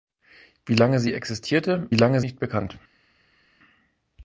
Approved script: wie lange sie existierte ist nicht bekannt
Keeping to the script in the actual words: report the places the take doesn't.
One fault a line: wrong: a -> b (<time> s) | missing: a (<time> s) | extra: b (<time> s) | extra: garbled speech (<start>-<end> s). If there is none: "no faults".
wrong: ist -> lange (1.9 s)